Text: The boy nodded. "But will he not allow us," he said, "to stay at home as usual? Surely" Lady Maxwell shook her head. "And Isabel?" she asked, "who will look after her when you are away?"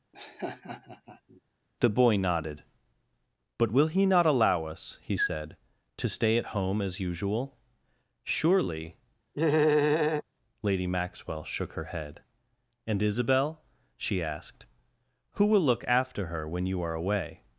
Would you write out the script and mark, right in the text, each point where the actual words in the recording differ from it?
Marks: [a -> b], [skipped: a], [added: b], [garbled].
The boy nodded. "But will he not allow us," he said, "to stay at home as usual? Surely" Lady Maxwell shook her head. "And Isabel?" she asked, "who will look after her when you are away?"